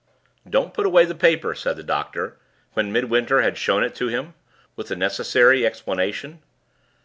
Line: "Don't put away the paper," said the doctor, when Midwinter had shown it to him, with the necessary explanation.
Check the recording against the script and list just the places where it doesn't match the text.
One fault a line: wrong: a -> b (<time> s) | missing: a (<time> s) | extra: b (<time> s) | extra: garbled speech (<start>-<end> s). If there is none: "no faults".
no faults